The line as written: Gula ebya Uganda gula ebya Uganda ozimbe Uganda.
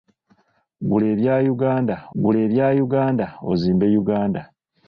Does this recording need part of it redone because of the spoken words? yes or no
no